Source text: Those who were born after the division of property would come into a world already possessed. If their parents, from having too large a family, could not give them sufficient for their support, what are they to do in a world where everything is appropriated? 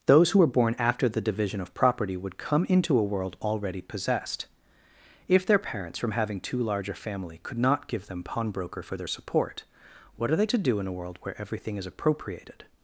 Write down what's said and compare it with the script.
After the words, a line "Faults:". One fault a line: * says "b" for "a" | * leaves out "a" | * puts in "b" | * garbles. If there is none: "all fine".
Those who were born after the division of property would come into a world already possessed. If their parents, from having too large a family, could not give them pawnbroker for their support, what are they to do in a world where everything is appropriated?
Faults:
* says "pawnbroker" for "sufficient"